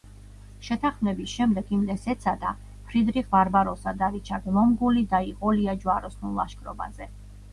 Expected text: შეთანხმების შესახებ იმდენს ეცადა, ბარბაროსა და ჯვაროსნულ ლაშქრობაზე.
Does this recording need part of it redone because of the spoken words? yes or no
yes